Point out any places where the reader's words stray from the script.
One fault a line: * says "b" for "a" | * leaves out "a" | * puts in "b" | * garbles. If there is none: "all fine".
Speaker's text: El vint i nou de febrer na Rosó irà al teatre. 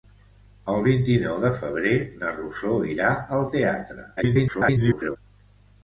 * garbles